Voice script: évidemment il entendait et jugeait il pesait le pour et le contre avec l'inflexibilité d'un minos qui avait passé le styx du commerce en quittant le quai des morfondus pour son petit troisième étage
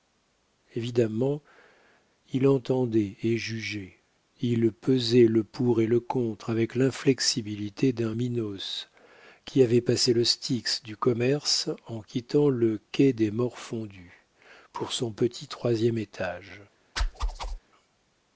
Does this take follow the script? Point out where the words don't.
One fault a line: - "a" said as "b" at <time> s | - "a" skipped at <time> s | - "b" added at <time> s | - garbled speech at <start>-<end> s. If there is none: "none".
none